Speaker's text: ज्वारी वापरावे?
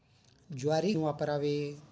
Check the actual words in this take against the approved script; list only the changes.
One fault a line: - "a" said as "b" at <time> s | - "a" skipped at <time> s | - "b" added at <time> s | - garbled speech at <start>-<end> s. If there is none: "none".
none